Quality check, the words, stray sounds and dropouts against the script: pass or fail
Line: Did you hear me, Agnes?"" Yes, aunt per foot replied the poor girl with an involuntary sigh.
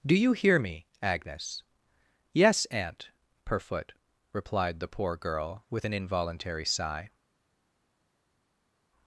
fail